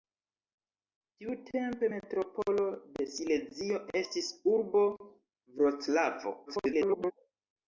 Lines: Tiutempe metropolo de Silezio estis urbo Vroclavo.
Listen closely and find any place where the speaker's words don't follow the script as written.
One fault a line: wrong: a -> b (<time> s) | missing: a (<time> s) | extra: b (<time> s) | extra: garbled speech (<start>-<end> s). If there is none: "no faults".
extra: garbled speech (6.5-7.1 s)